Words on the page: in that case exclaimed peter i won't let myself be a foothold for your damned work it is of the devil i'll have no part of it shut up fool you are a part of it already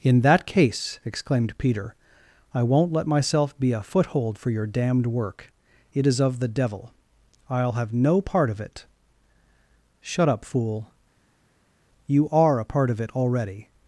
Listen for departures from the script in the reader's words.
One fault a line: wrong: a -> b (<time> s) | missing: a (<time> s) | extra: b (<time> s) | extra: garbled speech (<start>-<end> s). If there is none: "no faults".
no faults